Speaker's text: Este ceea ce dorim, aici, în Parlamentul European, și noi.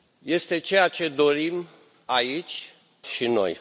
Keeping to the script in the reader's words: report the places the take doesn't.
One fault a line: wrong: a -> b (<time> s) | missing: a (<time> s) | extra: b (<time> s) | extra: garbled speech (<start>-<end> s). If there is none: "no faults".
missing: în Parlamentul European (2.7 s)